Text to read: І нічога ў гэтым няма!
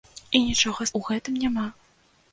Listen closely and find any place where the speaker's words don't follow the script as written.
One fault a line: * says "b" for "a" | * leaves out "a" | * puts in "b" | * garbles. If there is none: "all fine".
all fine